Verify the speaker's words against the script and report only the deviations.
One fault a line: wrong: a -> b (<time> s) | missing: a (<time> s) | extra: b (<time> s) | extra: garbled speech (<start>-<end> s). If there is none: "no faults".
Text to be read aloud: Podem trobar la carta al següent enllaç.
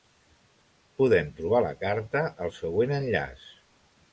no faults